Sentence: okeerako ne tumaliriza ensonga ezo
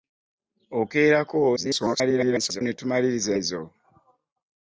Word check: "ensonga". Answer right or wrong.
wrong